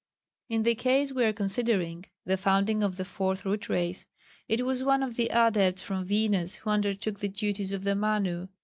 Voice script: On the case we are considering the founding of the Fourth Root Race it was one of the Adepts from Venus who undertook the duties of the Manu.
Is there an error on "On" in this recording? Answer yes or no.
yes